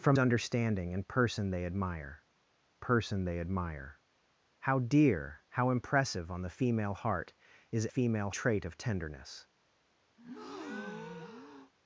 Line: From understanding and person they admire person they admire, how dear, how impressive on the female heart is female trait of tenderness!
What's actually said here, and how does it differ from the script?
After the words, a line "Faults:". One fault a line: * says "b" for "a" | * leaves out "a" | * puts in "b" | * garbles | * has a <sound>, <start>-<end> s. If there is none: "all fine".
From understanding and person they admire person they admire, how dear, how impressive on the female heart is female trait of tenderness!
Faults:
* has a breath, 10.2-11.7 s